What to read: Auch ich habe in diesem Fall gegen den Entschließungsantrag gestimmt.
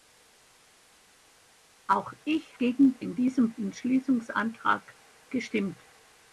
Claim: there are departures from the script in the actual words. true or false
true